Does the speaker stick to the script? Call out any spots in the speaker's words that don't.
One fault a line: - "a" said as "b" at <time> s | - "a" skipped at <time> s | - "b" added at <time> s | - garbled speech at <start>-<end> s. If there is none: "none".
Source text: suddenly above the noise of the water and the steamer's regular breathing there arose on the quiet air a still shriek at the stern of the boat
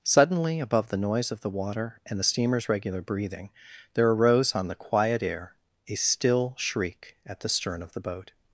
none